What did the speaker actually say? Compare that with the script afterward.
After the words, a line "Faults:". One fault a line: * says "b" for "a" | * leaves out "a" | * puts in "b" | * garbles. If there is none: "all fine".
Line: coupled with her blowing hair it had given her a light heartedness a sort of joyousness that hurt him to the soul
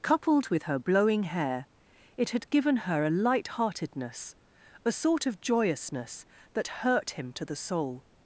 coupled with her blowing hair it had given her a light heartedness a sort of joyousness that hurt him to the soul
Faults:
all fine